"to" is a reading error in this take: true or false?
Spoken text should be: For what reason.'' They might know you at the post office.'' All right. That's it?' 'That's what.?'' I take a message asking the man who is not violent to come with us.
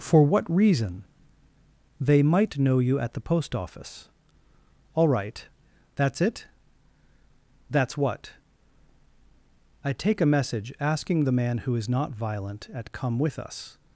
true